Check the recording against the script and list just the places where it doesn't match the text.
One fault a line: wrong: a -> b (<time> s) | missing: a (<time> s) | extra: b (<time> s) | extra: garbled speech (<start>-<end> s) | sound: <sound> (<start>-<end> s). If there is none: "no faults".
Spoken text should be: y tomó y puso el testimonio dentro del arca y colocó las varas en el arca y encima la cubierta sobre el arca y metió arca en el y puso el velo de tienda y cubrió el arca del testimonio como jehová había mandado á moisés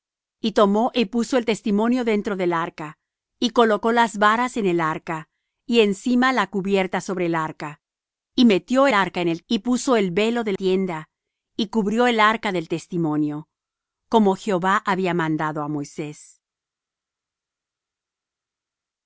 no faults